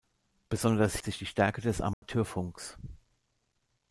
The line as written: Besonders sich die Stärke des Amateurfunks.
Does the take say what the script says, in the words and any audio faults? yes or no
no